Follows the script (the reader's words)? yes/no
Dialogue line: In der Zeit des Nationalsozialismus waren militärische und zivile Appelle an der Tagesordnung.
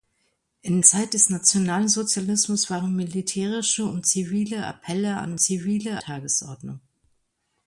no